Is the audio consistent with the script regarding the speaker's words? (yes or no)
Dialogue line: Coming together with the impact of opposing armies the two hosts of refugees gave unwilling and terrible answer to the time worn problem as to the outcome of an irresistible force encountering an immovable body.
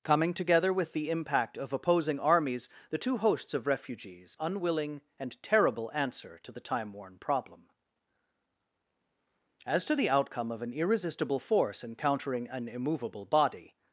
no